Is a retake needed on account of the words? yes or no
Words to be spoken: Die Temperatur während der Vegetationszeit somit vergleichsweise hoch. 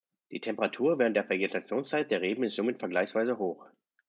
yes